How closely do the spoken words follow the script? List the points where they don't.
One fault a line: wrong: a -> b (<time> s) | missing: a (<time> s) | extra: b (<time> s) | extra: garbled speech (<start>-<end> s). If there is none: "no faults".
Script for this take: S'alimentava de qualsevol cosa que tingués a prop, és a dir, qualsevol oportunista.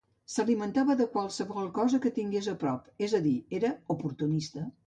wrong: qualsevol -> era (3.6 s)